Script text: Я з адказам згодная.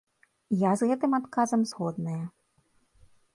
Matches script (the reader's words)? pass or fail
fail